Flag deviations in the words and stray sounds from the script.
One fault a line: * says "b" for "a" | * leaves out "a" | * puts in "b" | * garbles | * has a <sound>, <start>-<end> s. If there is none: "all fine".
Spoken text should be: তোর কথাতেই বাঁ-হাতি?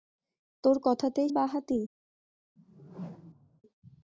* has a whoosh, 2.6-3.6 s